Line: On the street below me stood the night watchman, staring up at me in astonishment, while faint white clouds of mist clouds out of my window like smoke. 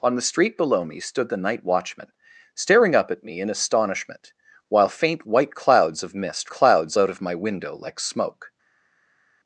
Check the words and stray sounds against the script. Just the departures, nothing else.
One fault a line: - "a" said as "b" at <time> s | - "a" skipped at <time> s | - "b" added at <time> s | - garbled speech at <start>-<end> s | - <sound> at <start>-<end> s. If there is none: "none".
none